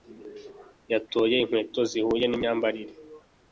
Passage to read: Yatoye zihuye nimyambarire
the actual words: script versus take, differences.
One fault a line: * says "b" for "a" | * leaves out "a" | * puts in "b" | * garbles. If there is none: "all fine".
* puts in "inkweto"